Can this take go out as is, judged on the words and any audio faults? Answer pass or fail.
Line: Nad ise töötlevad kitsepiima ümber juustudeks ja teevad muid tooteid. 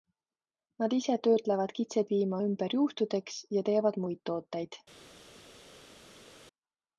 pass